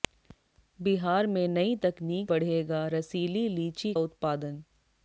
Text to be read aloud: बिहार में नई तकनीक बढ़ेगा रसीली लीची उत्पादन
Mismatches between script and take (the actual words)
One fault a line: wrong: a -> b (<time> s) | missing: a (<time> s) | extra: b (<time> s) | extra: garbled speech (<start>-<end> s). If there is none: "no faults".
no faults